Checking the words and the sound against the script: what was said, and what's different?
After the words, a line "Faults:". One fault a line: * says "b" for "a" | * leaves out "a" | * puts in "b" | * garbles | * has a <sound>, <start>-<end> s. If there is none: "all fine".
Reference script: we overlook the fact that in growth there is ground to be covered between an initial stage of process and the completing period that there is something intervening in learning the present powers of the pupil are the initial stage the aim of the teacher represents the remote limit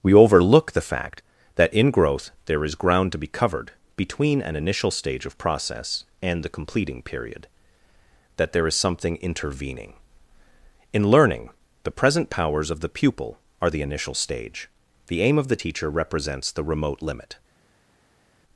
we overlook the fact that in growth there is ground to be covered between an initial stage of process and the completing period that there is something intervening in learning the present powers of the pupil are the initial stage the aim of the teacher represents the remote limit
Faults:
all fine